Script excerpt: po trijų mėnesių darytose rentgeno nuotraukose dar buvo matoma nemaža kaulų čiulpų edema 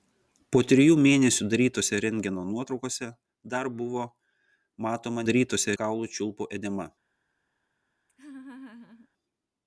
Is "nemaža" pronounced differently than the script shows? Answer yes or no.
yes